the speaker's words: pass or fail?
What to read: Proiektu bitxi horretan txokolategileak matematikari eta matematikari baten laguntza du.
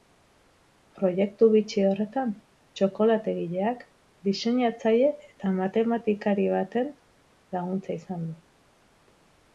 fail